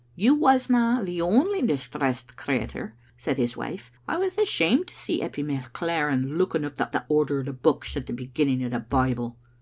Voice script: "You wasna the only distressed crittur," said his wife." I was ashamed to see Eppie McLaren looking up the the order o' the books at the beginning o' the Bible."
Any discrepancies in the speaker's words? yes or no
no